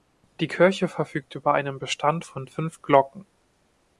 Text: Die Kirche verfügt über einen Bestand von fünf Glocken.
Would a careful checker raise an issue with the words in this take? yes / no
no